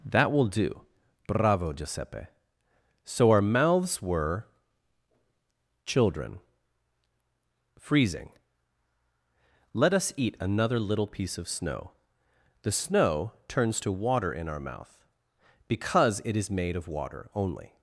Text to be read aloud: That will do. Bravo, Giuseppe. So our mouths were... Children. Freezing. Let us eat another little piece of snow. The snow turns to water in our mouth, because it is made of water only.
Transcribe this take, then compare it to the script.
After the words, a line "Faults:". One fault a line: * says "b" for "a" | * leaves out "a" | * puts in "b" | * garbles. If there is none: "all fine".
That will do. Bravo, Giuseppe. So our mouths were... Children. Freezing. Let us eat another little piece of snow. The snow turns to water in our mouth, because it is made of water only.
Faults:
all fine